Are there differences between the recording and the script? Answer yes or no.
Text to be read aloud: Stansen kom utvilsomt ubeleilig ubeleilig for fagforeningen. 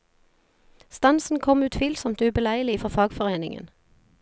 yes